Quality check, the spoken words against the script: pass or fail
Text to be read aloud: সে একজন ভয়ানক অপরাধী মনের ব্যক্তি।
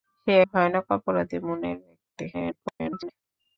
fail